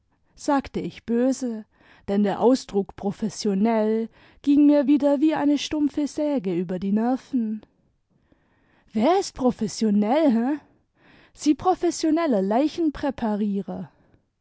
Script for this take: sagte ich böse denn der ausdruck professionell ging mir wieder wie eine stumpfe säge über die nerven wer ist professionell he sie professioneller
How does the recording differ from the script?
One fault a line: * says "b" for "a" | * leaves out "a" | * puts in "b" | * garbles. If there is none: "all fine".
all fine